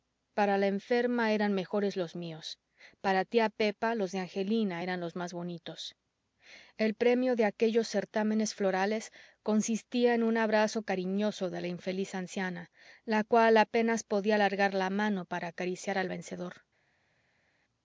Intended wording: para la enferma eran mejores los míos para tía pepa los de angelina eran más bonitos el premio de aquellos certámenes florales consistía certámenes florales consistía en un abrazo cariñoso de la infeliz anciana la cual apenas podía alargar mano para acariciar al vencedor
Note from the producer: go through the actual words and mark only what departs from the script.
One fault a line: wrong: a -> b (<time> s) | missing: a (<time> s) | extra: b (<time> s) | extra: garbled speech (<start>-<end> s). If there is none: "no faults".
extra: los (5.0 s)
missing: certámenes florales consistía (10.1 s)
extra: la (14.7 s)